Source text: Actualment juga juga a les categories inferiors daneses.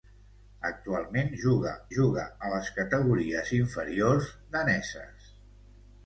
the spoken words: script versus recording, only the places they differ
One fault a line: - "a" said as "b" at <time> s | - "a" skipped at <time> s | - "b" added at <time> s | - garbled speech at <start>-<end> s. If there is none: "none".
none